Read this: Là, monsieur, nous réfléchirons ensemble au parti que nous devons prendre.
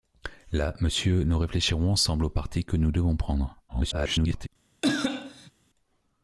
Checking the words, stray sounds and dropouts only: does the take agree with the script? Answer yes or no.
no